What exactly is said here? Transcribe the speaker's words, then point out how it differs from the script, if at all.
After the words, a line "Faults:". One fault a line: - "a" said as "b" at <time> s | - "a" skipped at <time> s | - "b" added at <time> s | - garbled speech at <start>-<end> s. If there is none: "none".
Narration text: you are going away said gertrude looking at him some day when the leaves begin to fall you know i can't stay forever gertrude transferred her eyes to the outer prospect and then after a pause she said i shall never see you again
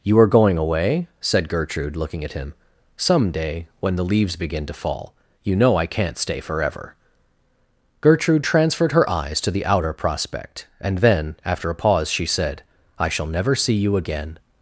you are going away said gertrude looking at him some day when the leaves begin to fall you know i can't stay forever gertrude transferred her eyes to the outer prospect and then after a pause she said i shall never see you again
Faults:
none